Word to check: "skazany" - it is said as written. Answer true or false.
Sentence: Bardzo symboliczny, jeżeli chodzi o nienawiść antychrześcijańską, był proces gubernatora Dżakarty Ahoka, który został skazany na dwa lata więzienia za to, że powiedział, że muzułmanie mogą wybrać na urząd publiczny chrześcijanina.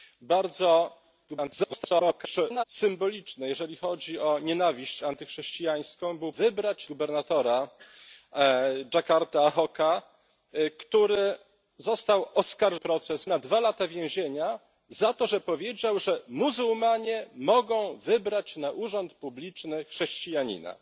false